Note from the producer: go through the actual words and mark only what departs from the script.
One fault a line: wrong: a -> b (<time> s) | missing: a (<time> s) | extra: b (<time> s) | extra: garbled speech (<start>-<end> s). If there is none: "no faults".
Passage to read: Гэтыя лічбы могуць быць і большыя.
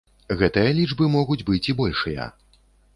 no faults